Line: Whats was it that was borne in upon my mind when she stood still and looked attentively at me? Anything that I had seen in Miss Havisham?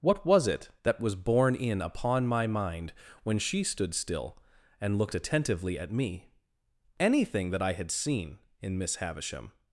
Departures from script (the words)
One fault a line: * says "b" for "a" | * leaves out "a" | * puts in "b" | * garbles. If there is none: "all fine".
* says "What" for "Whats"